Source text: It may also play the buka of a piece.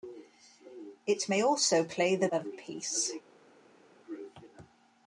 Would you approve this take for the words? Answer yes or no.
no